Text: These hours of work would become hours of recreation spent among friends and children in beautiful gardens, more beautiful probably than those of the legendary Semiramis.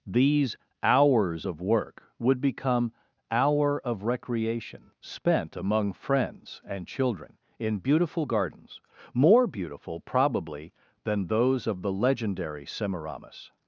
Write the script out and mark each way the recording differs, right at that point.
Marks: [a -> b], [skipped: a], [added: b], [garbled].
These hours of work would become [hours -> hour] of recreation spent among friends and children in beautiful gardens, more beautiful probably than those of the legendary Semiramis.